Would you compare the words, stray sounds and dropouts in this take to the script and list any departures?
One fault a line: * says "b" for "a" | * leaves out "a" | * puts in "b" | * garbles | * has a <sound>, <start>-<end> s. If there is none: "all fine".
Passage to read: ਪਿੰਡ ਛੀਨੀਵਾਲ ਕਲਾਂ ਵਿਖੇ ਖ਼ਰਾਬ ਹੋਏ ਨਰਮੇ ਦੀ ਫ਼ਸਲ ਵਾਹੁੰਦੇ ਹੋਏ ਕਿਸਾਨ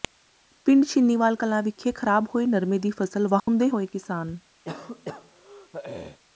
* has a dropout, 3.4-3.5 s
* has a throat clearing, 4.6-6.2 s